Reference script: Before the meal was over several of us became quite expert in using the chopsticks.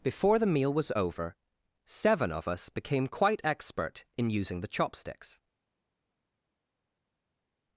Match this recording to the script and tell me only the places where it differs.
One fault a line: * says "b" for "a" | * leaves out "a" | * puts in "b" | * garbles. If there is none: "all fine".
* says "seven" for "several"